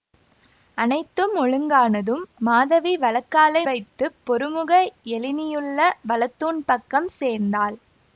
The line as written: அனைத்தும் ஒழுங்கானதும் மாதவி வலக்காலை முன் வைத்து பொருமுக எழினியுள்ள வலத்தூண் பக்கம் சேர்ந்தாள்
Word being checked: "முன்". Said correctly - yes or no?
no